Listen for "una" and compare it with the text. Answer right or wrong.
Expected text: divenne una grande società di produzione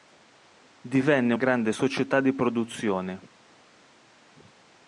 wrong